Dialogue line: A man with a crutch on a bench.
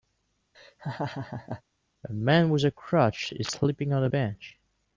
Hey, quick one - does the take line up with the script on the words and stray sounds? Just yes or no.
no